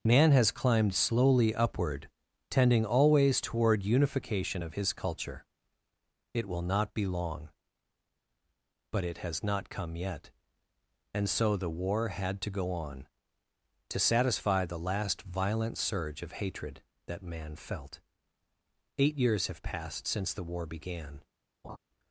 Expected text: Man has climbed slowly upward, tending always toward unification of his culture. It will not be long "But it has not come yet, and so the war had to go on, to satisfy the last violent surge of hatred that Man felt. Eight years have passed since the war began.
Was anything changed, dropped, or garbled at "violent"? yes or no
no